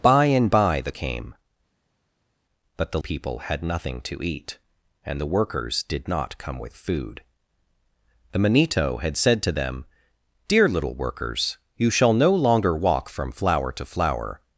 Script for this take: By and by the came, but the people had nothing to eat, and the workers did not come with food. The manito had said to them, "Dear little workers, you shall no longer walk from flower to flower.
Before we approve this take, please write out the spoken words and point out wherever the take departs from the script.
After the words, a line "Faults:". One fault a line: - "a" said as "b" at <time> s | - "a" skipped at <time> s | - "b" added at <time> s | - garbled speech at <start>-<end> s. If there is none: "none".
By and by the came, but the people had nothing to eat, and the workers did not come with food. The manito had said to them, "Dear little workers, you shall no longer walk from flower to flower.
Faults:
none